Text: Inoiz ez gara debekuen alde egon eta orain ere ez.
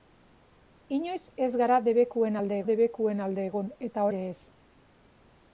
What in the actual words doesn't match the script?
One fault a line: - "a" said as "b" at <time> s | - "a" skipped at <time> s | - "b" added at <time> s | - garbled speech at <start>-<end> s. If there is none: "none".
- "debekuen alde" added at 2.7 s
- "orain" skipped at 4.1 s